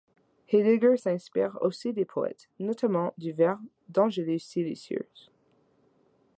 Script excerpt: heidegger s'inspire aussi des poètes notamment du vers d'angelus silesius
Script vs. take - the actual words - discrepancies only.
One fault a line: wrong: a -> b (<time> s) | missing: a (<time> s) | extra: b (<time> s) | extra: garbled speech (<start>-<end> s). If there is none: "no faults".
no faults